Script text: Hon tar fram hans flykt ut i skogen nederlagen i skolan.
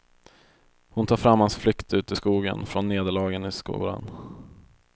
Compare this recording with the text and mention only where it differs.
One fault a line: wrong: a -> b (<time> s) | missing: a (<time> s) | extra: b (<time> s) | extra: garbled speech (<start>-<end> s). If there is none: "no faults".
extra: från (2.6 s)